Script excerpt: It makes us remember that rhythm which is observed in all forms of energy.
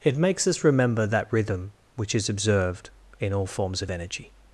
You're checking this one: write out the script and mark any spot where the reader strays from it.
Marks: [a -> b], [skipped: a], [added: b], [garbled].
It makes us remember that rhythm which is observed in all forms of energy.